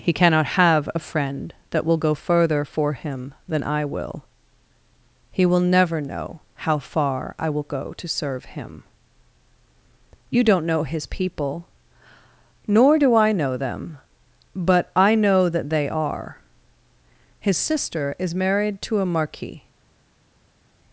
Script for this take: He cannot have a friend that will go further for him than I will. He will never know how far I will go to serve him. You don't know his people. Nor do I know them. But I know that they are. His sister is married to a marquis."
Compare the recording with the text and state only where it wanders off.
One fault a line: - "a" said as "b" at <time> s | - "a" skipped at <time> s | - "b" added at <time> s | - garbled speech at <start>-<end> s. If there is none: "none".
none